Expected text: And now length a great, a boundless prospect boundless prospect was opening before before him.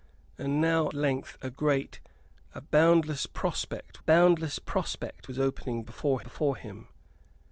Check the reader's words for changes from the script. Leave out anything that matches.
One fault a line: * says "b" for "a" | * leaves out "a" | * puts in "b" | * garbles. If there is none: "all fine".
all fine